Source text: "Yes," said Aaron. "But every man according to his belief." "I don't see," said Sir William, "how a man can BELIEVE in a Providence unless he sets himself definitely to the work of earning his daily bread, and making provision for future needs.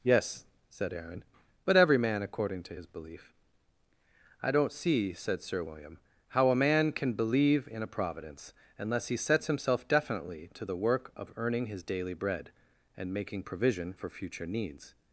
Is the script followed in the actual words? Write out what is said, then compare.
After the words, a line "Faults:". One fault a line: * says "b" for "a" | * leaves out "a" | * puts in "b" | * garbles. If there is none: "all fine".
"Yes," said Aaron. "But every man according to his belief." "I don't see," said Sir William, "how a man can BELIEVE in a Providence unless he sets himself definitely to the work of earning his daily bread, and making provision for future needs.
Faults:
all fine